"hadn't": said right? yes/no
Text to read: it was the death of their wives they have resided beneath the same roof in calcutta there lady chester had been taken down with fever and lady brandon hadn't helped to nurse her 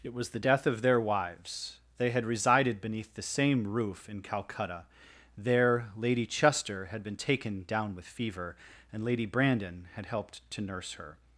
no